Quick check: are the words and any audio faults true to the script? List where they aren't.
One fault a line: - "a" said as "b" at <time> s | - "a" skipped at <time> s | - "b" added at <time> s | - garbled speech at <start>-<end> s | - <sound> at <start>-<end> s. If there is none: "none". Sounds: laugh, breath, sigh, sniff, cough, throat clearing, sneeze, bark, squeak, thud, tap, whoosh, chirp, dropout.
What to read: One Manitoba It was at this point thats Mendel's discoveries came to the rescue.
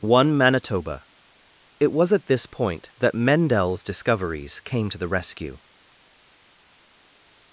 - "thats" said as "that" at 3.0 s